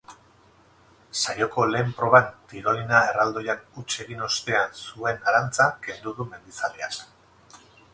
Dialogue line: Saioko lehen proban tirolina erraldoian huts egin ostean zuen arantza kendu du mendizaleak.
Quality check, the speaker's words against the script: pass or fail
pass